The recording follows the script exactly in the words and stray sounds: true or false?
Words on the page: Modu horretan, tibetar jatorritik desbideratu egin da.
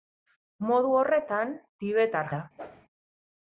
false